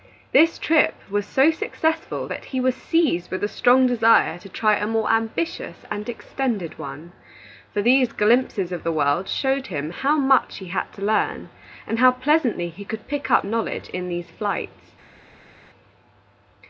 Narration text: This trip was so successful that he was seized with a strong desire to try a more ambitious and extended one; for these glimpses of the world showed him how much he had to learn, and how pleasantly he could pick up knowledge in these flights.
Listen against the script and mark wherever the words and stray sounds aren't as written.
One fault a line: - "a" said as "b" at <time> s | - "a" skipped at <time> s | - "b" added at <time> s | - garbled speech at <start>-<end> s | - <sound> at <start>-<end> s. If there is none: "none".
none